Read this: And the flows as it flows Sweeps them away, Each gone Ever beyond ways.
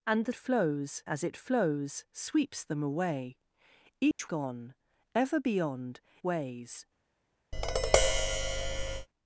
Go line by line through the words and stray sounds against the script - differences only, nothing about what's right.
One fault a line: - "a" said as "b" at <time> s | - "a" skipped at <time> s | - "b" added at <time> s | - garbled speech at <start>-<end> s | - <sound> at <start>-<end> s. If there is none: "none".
- dropout at 4.1-4.2 s
- tap at 7.5-9.1 s